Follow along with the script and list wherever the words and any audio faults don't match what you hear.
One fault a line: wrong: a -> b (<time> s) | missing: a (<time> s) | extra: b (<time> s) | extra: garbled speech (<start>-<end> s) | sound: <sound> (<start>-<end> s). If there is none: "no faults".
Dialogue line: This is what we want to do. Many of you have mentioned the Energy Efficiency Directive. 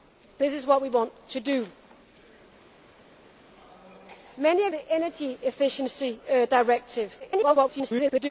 missing: you have mentioned (4.7 s)
extra: garbled speech (7.2-8.3 s)